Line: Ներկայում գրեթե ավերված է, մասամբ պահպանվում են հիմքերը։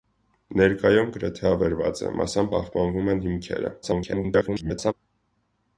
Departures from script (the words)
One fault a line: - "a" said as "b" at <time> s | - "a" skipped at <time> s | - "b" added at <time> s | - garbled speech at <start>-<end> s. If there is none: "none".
- garbled speech at 3.8-4.9 s